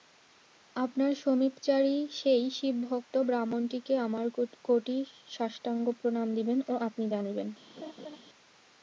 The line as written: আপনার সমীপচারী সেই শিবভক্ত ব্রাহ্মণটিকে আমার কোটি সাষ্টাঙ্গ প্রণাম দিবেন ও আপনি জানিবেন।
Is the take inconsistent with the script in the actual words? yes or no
no